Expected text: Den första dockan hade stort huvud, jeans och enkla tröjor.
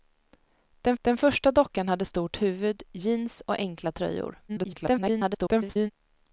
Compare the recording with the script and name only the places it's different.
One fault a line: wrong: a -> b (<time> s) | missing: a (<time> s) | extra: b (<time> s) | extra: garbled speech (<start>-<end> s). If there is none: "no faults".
extra: den (1.0 s)
extra: garbled speech (4.5-5.9 s)